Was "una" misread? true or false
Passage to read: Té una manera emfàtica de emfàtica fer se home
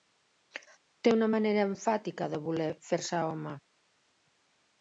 false